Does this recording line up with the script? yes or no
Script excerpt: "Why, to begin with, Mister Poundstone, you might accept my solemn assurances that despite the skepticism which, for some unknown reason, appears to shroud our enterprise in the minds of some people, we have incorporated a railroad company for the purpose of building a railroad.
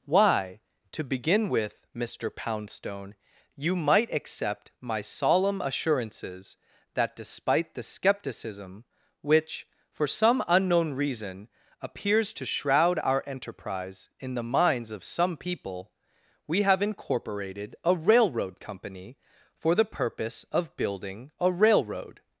yes